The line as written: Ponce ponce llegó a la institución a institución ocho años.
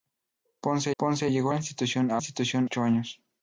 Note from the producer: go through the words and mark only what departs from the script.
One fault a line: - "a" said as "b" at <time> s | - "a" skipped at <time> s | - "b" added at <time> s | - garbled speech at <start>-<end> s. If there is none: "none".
none